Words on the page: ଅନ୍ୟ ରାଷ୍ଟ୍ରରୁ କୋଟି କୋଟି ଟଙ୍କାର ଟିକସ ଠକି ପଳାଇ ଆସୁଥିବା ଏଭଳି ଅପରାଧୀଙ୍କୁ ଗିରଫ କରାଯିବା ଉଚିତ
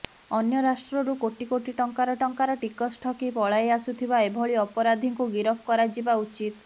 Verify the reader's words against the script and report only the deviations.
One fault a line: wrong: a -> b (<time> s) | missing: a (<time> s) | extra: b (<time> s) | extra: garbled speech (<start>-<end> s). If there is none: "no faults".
extra: ଟଙ୍କାର (2.2 s)